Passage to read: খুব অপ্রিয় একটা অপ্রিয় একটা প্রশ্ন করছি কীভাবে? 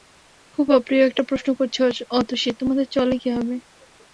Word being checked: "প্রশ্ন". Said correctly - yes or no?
no